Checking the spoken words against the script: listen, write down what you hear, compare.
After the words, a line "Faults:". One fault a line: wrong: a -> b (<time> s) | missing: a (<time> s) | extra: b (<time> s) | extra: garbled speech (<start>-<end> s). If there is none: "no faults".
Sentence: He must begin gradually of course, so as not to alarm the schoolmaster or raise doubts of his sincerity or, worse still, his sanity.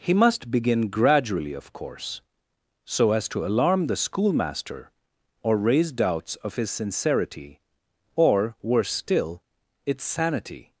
He must begin gradually of course, so as to alarm the schoolmaster or raise doubts of his sincerity or, worse still, its sanity.
Faults:
missing: not (3.3 s)
wrong: his -> its (9.8 s)